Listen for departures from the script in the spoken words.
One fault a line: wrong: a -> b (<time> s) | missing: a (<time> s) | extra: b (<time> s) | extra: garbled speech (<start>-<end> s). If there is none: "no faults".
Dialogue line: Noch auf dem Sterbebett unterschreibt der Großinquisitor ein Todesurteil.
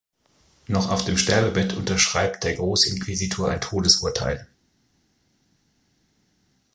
no faults